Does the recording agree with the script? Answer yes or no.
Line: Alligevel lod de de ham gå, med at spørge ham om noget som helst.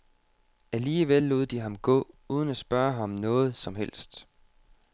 no